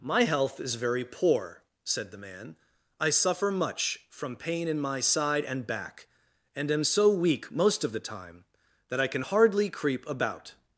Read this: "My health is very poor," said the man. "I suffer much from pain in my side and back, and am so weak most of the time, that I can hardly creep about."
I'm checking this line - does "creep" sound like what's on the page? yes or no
yes